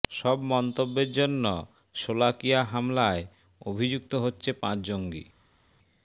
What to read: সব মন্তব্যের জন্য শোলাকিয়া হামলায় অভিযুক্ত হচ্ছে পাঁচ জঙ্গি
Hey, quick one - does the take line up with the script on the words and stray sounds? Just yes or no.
yes